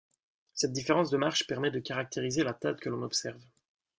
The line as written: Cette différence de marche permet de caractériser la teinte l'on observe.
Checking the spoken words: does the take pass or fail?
fail